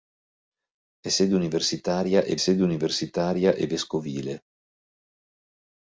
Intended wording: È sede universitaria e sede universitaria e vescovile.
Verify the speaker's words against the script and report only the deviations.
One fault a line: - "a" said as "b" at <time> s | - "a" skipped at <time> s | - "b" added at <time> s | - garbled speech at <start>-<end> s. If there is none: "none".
none